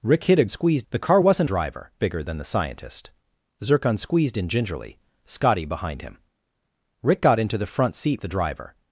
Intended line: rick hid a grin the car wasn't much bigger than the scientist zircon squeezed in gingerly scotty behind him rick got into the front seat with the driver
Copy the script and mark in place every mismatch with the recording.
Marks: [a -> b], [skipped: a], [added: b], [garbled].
rick hid a [grin -> squeezed] the car wasn't [much -> driver] bigger than the scientist zircon squeezed in gingerly scotty behind him rick got into the front seat [skipped: with] the driver